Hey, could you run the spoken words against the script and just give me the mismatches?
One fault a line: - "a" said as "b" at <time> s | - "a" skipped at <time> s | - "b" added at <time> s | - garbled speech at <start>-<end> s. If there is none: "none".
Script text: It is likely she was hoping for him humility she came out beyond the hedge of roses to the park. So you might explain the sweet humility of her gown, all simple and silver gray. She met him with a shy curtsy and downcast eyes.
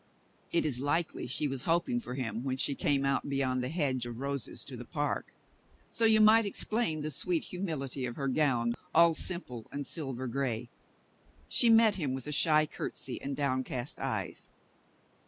- "humility" said as "when" at 2.4 s